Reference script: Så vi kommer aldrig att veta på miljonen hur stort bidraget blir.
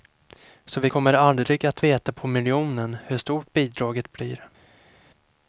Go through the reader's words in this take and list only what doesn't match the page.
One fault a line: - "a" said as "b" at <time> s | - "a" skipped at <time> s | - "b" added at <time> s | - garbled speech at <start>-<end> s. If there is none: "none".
none